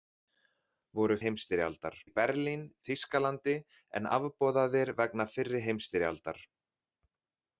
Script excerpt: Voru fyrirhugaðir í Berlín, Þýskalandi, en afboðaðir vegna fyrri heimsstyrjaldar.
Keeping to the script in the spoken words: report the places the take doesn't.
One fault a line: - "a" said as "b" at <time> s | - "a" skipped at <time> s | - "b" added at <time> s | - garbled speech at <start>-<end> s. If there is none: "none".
- "fyrirhugaðir" said as "heimsstyrjaldar" at 1.3 s